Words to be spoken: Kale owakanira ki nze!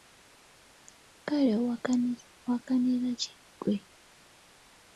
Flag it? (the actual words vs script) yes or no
yes